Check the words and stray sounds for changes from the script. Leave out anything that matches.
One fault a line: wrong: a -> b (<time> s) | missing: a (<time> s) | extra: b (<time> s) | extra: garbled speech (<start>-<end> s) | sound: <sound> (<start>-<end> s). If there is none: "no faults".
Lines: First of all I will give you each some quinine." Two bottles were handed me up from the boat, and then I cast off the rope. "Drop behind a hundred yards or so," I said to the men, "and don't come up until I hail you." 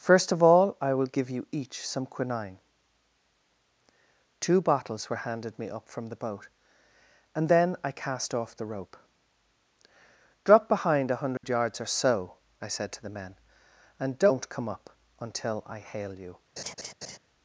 sound: dropout (11.4-11.4 s)
sound: laugh (16.6-17.2 s)